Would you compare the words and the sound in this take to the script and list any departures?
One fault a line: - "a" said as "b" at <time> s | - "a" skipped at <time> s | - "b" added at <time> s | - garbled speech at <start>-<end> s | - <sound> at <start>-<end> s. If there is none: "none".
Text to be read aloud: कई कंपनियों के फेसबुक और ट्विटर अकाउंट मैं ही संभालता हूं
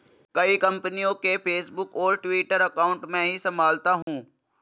- dropout at 4.0-4.1 s